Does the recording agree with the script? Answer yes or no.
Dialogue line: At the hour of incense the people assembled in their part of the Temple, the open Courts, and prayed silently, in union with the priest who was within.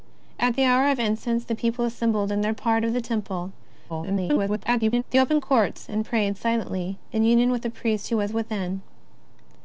no